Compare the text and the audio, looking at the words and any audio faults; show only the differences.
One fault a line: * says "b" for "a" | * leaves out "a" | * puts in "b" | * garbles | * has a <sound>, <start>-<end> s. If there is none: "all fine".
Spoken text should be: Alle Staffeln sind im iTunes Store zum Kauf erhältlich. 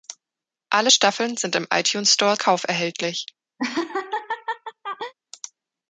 * leaves out "zum"
* has a laugh, 3.6-5.1 s